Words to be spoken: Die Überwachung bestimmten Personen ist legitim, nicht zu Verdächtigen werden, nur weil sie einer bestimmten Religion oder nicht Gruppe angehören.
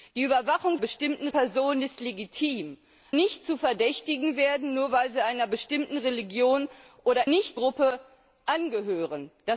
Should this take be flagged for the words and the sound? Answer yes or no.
no